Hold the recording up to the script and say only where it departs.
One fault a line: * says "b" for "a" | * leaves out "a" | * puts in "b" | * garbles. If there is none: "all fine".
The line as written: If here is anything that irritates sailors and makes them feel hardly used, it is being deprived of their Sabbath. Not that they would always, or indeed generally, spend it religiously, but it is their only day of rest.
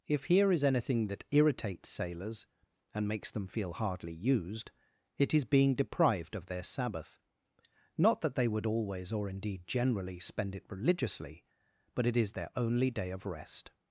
all fine